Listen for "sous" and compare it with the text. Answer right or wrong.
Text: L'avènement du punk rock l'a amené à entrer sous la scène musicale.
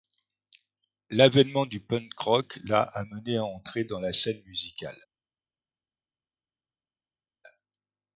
wrong